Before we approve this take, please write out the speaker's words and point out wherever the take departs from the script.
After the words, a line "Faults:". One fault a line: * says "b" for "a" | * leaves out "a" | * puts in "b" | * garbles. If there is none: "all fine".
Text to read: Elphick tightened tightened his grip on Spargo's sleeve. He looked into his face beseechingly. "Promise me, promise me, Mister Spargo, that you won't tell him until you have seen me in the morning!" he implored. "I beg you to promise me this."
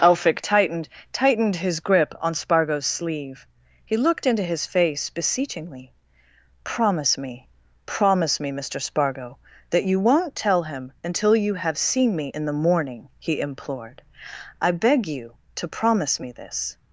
Elphick tightened tightened his grip on Spargo's sleeve. He looked into his face beseechingly. "Promise me, promise me, Mister Spargo, that you won't tell him until you have seen me in the morning!" he implored. "I beg you to promise me this."
Faults:
all fine